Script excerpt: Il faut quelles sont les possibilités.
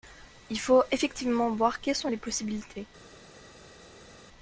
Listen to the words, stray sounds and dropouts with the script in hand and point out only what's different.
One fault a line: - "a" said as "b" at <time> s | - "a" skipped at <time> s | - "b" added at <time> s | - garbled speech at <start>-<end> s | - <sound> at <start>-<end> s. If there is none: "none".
- "effectivement voir" added at 0.9 s